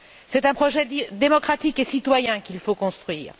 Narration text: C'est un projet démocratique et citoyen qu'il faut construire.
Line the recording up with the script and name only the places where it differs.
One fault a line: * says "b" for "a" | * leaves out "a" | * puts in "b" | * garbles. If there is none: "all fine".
all fine